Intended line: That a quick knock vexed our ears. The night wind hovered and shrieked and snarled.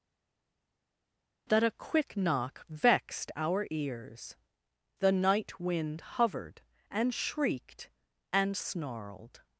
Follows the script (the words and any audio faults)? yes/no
yes